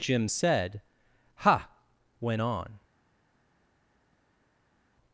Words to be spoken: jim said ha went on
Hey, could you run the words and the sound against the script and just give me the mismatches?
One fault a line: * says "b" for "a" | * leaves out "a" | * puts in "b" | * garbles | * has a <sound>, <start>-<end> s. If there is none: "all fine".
all fine